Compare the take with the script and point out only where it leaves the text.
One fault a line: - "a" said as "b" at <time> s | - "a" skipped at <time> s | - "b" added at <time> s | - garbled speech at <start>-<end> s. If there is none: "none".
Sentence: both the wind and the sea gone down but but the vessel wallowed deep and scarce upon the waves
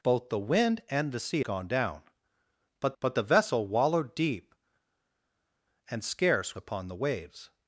none